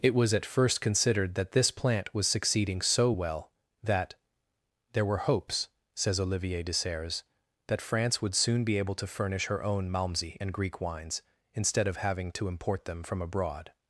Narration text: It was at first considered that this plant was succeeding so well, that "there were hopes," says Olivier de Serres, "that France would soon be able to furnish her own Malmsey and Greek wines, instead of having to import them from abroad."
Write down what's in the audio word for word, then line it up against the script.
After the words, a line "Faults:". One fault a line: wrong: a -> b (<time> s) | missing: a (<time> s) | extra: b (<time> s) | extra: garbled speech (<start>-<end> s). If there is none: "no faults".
It was at first considered that this plant was succeeding so well, that "there were hopes," says Olivier de Serres, "that France would soon be able to furnish her own Malmsey and Greek wines, instead of having to import them from abroad."
Faults:
no faults